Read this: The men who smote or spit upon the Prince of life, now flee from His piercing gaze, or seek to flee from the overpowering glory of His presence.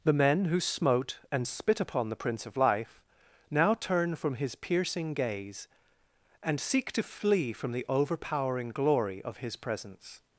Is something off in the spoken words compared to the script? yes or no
yes